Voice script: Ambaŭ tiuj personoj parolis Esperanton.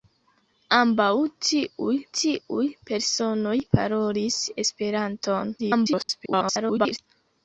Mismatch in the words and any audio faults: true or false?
true